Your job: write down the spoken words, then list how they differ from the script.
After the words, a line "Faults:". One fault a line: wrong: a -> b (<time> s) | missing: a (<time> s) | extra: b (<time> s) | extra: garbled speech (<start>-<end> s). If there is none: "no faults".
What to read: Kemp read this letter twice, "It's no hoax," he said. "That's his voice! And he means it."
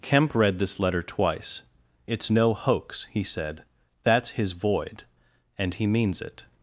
Kemp read this letter twice, "It's no hoax," he said. "That's his void! And he means it."
Faults:
wrong: voice -> void (4.5 s)